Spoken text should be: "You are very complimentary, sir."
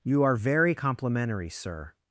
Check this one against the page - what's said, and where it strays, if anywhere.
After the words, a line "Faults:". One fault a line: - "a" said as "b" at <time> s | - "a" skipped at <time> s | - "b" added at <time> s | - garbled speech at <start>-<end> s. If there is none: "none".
"You are very complimentary, sir."
Faults:
none